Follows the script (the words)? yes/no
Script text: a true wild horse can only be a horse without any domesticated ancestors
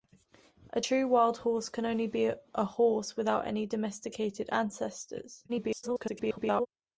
no